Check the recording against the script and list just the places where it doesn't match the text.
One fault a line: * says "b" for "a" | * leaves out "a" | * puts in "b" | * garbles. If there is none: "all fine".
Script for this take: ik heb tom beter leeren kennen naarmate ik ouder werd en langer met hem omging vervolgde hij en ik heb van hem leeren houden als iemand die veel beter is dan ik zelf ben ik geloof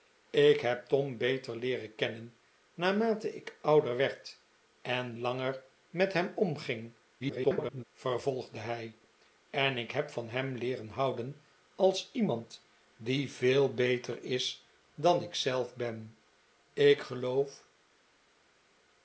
* garbles